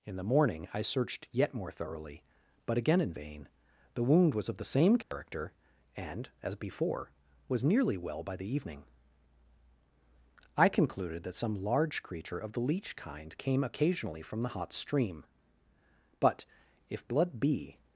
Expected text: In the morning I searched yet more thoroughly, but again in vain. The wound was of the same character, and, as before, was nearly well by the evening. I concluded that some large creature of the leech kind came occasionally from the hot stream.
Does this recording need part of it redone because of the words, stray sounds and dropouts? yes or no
yes